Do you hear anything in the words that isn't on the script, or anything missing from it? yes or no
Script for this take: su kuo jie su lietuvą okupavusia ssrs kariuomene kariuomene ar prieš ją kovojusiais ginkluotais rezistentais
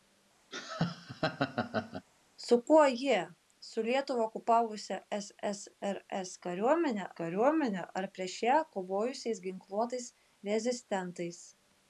no